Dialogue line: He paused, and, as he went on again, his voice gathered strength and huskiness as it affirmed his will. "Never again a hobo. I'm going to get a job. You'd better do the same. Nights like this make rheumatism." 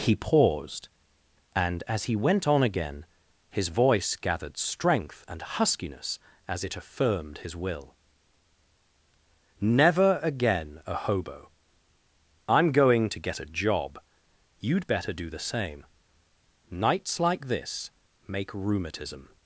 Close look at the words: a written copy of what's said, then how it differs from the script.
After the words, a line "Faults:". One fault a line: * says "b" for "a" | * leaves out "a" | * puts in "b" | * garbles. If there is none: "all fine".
He paused, and, as he went on again, his voice gathered strength and huskiness as it affirmed his will. "Never again a hobo. I'm going to get a job. You'd better do the same. Nights like this make rheumatism."
Faults:
all fine